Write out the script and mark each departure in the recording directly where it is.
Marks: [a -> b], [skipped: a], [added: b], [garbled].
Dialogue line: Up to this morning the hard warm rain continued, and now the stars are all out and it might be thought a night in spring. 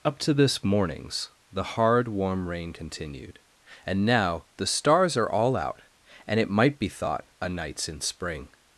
Up to this [morning -> mornings] the hard warm rain continued, and now the stars are all out and it might be thought a [night -> nights] in spring.